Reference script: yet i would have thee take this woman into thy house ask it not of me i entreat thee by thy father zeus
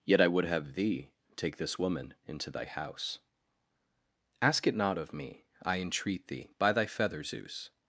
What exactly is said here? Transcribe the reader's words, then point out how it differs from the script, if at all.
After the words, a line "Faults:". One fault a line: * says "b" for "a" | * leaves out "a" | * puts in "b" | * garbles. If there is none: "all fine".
yet i would have thee take this woman into thy house ask it not of me i entreat thee by thy feather zeus
Faults:
* says "feather" for "father"